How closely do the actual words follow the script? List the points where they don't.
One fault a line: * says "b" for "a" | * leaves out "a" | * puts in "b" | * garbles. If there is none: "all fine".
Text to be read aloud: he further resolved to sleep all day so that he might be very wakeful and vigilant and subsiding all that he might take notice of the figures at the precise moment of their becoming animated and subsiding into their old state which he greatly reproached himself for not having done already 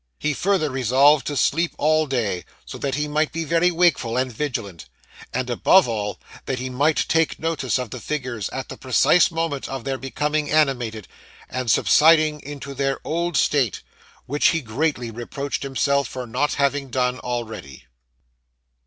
* says "above" for "subsiding"